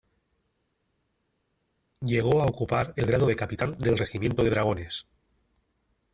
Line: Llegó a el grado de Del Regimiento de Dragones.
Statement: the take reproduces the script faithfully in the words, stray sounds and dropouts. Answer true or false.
false